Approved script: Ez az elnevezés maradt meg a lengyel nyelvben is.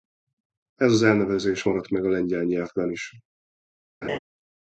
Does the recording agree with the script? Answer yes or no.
yes